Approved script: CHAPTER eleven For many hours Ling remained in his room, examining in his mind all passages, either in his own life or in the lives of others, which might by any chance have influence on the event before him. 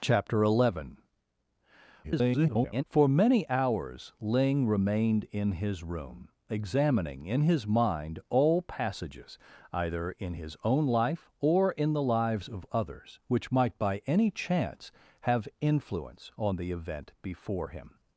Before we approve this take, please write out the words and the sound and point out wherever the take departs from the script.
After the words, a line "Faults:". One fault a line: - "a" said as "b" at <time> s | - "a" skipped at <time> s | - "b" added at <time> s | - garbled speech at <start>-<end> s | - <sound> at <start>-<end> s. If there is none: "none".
CHAPTER eleven [garbled] For many hours Ling remained in his room, examining in his mind all passages, either in his own life or in the lives of others, which might by any chance have influence on the event before him.
Faults:
- garbled speech at 2.0-2.8 s